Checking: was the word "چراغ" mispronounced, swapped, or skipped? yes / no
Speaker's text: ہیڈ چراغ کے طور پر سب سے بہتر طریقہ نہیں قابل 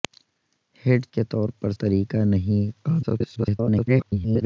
yes